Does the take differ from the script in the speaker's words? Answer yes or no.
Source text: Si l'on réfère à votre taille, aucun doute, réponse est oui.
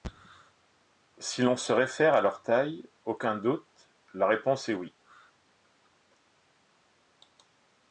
yes